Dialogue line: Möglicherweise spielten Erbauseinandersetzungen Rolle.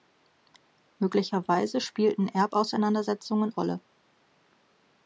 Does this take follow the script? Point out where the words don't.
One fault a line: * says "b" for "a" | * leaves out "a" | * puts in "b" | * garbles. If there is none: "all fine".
all fine